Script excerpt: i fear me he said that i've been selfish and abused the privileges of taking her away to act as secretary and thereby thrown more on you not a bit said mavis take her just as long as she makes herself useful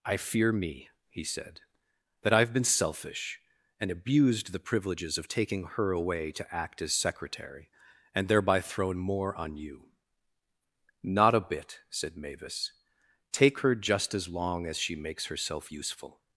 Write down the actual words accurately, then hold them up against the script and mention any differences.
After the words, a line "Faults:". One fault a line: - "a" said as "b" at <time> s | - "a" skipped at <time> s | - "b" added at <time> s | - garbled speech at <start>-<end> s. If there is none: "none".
i fear me he said that i've been selfish and abused the privileges of taking her away to act as secretary and thereby thrown more on you not a bit said mavis take her just as long as she makes herself useful
Faults:
none